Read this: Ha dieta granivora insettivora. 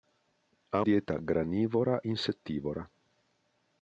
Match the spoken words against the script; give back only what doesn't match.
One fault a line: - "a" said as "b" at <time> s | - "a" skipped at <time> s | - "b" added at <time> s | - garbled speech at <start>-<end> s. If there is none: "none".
none